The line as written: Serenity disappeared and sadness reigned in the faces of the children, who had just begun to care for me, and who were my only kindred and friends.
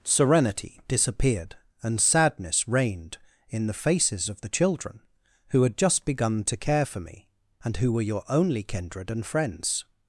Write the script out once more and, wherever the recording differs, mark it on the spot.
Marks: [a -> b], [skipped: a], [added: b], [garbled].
Serenity disappeared and sadness reigned in the faces of the children, who had just begun to care for me, and who were [my -> your] only kindred and friends.